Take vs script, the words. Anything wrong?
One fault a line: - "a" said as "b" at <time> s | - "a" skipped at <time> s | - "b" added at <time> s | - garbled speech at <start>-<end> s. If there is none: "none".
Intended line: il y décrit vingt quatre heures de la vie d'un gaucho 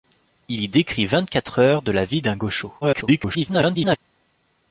- garbled speech at 2.8-4.0 s